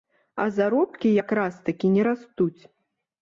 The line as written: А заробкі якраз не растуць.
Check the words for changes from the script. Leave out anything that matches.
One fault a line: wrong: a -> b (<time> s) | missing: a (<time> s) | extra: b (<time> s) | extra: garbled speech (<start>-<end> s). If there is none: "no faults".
extra: такі (1.7 s)